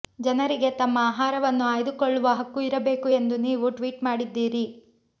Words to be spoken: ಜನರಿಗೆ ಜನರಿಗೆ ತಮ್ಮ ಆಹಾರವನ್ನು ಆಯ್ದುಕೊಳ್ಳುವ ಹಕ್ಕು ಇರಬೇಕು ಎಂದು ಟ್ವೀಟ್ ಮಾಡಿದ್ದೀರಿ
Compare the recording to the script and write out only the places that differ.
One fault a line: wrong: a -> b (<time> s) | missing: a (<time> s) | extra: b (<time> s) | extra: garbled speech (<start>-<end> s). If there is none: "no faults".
missing: ಜನರಿಗೆ (0.7 s)
extra: ನೀವು (3.5 s)